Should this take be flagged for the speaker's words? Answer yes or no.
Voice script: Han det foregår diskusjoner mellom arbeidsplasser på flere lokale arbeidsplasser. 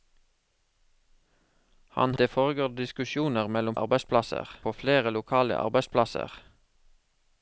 no